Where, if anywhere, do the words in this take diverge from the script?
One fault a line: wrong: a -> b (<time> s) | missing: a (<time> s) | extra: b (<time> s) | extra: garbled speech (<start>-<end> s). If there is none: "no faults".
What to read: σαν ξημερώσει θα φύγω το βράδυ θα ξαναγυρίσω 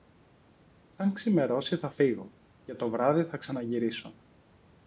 extra: και (2.6 s)